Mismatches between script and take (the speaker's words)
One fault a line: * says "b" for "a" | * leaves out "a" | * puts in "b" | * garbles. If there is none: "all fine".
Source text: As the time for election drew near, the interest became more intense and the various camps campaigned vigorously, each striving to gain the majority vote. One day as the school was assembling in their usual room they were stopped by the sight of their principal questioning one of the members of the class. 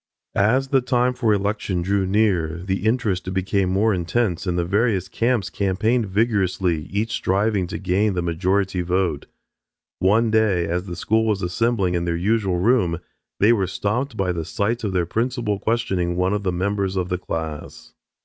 all fine